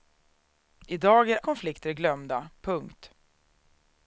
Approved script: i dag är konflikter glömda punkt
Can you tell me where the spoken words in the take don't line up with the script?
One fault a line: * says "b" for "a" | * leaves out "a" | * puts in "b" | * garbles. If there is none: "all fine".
all fine